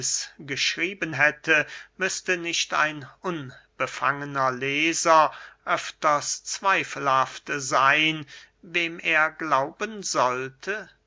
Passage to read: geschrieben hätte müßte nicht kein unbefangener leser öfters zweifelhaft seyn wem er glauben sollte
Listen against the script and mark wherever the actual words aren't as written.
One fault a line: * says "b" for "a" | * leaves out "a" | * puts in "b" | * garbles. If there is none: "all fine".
* says "ein" for "kein"